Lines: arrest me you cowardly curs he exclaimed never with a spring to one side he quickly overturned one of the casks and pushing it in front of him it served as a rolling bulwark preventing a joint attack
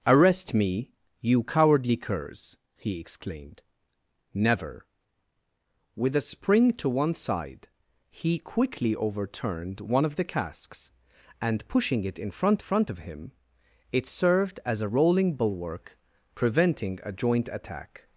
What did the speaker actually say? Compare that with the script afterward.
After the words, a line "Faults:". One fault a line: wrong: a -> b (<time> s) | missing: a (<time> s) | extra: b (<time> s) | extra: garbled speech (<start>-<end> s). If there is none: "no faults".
arrest me you cowardly curs he exclaimed never with a spring to one side he quickly overturned one of the casks and pushing it in front front of him it served as a rolling bulwark preventing a joint attack
Faults:
extra: front (12.6 s)